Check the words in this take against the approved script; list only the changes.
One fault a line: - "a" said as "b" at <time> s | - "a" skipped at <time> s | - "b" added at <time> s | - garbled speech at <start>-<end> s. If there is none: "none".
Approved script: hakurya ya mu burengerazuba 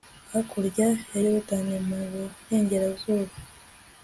- "yorudani" added at 1.2 s